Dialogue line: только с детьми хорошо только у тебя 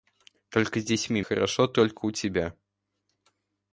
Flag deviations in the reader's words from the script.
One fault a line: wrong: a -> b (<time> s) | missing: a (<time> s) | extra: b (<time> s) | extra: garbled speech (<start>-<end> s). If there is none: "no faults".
no faults